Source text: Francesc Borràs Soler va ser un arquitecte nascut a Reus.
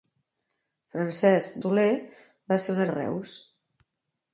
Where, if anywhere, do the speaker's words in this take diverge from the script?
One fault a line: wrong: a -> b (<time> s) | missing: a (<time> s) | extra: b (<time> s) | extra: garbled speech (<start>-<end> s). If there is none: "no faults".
missing: Borràs (1.6 s)
missing: arquitecte nascut (2.8 s)